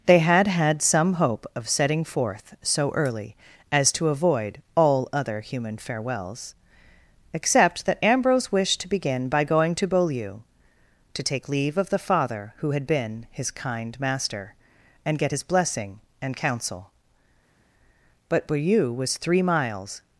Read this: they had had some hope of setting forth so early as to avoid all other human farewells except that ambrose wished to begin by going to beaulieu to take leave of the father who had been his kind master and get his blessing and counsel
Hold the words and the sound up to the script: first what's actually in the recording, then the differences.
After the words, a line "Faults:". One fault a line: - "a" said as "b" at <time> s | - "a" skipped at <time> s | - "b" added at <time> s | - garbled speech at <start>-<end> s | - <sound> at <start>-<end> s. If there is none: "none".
they had had some hope of setting forth so early as to avoid all other human farewells except that ambrose wished to begin by going to beaulieu to take leave of the father who had been his kind master and get his blessing and counsel but beaulieu was three miles
Faults:
- "but beaulieu was three miles" added at 18.3 s